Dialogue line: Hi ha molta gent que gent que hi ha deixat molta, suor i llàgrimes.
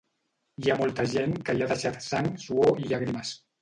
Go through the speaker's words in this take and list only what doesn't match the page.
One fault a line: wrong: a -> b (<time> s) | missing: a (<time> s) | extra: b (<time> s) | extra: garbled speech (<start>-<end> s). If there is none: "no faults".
missing: gent que (1.6 s)
wrong: molta -> sang (2.1 s)